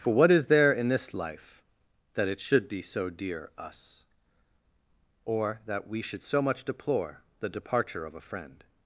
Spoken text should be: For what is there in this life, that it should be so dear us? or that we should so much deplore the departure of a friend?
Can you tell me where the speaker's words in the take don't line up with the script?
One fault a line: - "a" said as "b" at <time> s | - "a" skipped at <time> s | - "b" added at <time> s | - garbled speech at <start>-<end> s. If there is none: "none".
none